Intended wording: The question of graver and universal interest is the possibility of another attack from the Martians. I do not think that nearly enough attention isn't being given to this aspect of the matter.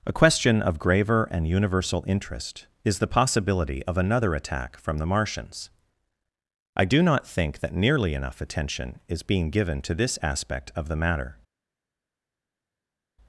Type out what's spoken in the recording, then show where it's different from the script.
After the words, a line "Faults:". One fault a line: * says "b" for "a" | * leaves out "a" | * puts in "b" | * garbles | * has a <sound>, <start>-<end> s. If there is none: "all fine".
A question of graver and universal interest is the possibility of another attack from the Martians. I do not think that nearly enough attention is being given to this aspect of the matter.
Faults:
* says "A" for "The"
* says "is" for "isn't"